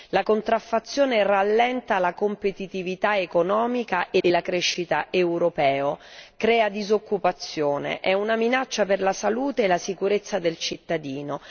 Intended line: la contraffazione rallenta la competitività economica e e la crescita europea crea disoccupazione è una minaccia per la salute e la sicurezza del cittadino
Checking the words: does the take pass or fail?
pass